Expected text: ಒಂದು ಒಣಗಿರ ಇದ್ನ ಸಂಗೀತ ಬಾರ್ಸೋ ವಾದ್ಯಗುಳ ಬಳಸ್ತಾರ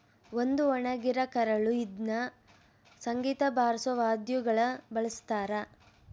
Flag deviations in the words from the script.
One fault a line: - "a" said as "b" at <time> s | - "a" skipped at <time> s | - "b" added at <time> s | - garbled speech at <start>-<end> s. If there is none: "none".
- "ಕರಳು" added at 1.3 s